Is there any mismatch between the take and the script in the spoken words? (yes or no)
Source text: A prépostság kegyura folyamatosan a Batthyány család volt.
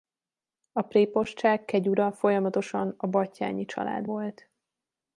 no